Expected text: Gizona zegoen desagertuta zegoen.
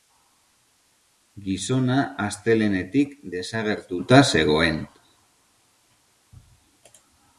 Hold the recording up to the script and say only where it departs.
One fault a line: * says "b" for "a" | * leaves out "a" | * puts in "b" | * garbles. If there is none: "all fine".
* says "astelehenetik" for "zegoen"